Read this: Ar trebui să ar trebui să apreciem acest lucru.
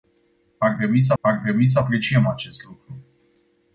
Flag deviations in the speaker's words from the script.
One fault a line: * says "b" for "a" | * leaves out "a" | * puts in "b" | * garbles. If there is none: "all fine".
all fine